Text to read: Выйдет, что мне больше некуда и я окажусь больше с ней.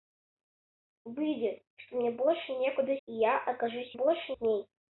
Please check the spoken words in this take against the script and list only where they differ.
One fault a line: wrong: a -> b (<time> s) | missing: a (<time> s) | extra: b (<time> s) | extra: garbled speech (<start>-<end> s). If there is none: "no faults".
no faults